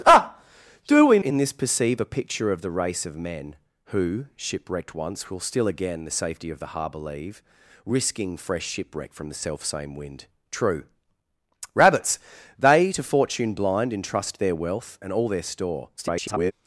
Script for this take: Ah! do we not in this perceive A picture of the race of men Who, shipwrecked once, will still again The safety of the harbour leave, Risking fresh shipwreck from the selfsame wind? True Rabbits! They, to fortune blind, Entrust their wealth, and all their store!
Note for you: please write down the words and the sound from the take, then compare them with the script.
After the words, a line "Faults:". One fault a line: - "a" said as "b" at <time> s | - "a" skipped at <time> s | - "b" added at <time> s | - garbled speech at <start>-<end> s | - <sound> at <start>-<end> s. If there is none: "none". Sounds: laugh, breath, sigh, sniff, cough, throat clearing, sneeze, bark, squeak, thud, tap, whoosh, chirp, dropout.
Ah! do we in this perceive A picture of the race of men Who, shipwrecked once, will still again The safety of the harbour leave, Risking fresh shipwreck from the selfsame wind? True Rabbits! They, to fortune blind, Entrust their wealth, and all their store! [garbled]
Faults:
- "not" skipped at 1.2 s
- garbled speech at 16.0-16.5 s